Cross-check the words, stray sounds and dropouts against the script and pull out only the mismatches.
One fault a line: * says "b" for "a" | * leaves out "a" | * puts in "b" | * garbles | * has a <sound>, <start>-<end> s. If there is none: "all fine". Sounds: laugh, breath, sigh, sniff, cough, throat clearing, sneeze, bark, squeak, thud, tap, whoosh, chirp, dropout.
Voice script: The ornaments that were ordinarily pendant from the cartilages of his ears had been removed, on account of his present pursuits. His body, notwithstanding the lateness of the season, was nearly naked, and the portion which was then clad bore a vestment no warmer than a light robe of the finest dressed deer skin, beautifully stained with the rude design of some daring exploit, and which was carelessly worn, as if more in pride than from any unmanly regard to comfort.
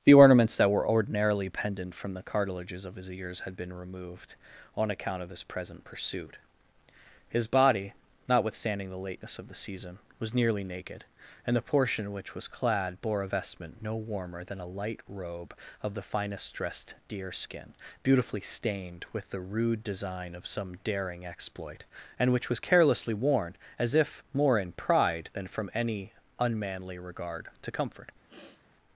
* says "pursuit" for "pursuits"
* leaves out "then"
* has a sniff, 28.3-28.7 s